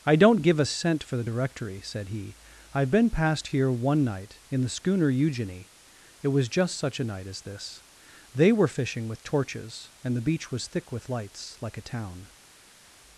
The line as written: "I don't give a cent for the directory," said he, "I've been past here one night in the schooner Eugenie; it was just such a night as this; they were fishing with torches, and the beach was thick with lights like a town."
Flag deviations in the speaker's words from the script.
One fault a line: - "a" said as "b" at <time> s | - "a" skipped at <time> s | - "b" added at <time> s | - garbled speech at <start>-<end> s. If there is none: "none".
none